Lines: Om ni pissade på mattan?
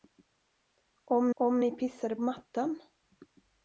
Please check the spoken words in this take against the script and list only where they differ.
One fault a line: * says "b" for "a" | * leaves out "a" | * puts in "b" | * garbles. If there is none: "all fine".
* puts in "om"
* leaves out "på"